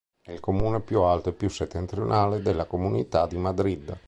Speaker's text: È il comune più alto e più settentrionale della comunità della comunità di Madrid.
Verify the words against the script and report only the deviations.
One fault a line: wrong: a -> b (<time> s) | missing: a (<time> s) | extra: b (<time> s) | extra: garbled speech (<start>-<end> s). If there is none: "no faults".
missing: della comunità (3.3 s)